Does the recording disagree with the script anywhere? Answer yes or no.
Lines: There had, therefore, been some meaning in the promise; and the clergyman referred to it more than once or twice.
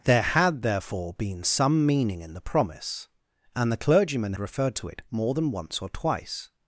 no